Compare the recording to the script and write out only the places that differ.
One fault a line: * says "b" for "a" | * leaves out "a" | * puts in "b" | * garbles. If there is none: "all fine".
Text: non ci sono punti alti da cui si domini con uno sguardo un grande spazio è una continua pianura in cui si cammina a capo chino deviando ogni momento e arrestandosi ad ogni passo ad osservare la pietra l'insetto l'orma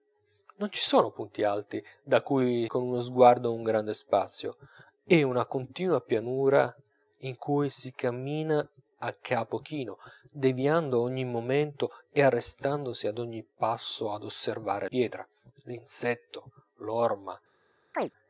* leaves out "si domini"
* leaves out "la"